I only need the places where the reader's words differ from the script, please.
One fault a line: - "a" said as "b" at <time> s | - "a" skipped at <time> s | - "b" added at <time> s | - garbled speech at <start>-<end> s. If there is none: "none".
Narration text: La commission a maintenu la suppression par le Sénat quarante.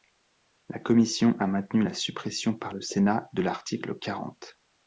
- "de l'article" added at 3.3 s